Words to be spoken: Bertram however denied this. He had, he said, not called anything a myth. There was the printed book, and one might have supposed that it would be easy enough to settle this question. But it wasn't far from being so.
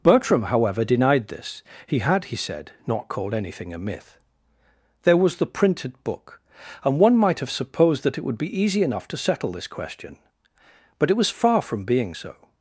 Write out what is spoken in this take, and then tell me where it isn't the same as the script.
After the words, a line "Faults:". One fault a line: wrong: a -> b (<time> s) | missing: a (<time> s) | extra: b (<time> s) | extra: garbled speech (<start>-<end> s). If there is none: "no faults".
Bertram however denied this. He had, he said, not called anything a myth. There was the printed book, and one might have supposed that it would be easy enough to settle this question. But it was far from being so.
Faults:
wrong: wasn't -> was (11.2 s)